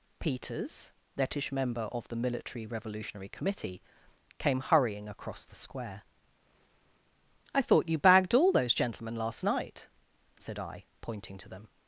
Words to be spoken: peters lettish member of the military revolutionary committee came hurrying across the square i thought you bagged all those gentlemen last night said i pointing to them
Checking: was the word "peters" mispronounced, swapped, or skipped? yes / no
no